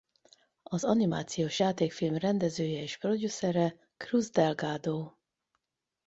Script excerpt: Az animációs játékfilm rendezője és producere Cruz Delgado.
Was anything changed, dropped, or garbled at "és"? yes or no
no